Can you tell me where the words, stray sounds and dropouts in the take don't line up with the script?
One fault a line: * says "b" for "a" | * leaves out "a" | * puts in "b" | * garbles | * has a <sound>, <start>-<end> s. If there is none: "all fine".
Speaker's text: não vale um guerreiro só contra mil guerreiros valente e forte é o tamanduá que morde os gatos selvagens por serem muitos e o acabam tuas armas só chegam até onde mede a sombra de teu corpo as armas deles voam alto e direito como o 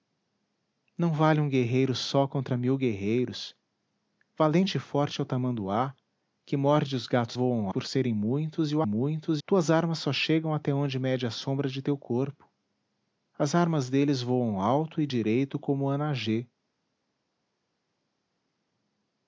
* says "voam" for "selvagens"
* says "muitos" for "acabam"